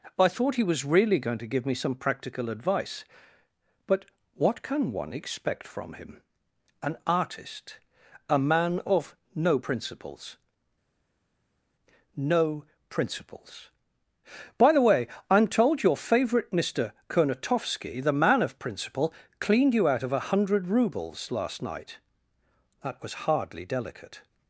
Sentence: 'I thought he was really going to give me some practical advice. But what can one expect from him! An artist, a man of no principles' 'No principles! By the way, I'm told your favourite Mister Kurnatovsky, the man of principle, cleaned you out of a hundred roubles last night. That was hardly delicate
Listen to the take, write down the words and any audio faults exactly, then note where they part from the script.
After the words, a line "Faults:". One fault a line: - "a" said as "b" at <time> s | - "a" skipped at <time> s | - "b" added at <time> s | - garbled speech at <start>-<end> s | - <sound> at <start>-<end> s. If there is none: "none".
'I thought he was really going to give me some practical advice. But what can one expect from him! An artist, a man of no principles' 'No principles! By the way, I'm told your favourite Mister Kurnatovsky, the man of principle, cleaned you out of a hundred roubles last night. That was hardly delicate
Faults:
none